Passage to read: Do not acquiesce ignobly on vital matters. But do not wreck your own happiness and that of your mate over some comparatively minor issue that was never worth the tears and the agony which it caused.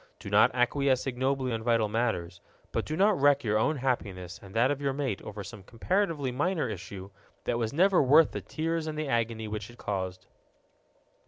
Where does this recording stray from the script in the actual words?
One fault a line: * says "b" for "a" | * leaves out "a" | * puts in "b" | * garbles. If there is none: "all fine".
all fine